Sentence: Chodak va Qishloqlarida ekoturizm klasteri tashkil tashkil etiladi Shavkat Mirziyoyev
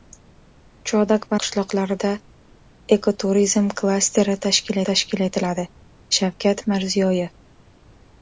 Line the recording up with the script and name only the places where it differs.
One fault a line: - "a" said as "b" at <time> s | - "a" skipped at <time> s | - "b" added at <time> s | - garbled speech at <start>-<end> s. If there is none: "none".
none